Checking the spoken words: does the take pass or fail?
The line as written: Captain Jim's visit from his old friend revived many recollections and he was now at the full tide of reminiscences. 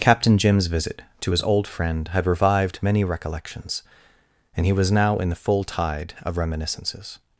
fail